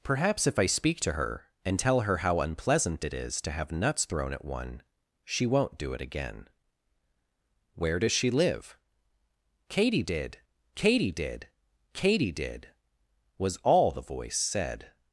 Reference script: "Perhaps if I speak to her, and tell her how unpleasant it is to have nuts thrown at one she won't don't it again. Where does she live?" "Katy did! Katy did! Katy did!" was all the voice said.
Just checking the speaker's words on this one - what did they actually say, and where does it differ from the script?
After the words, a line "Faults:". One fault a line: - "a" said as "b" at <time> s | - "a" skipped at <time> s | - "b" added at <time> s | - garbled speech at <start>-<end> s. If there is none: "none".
"Perhaps if I speak to her, and tell her how unpleasant it is to have nuts thrown at one she won't do it again. Where does she live?" "Katy did! Katy did! Katy did!" was all the voice said.
Faults:
- "don't" said as "do" at 5.8 s